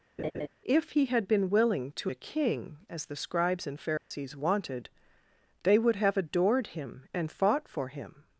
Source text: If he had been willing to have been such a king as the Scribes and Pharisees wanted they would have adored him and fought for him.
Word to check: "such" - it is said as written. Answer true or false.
false